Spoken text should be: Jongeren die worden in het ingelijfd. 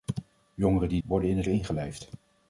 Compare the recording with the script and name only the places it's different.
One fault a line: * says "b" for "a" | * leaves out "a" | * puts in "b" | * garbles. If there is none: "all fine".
all fine